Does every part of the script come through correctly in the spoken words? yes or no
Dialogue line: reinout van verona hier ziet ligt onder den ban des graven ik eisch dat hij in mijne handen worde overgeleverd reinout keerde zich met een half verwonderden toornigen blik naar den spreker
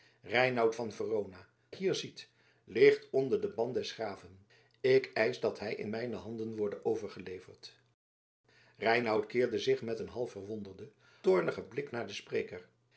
yes